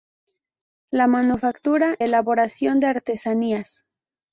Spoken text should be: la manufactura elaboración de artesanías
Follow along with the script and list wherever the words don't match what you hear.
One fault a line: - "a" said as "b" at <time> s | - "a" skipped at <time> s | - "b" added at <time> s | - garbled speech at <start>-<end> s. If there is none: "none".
none